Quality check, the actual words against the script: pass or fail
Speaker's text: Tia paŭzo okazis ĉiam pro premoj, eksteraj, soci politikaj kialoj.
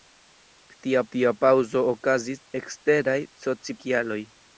fail